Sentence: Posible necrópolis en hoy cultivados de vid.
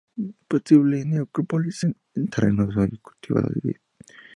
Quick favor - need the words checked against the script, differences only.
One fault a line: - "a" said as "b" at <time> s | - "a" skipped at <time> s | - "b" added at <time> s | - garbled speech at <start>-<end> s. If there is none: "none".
- "terrenos" added at 2.3 s